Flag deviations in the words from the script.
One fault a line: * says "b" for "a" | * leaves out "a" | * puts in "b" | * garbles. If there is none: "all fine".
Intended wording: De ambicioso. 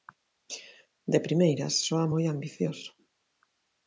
* puts in "primeiras soa moi"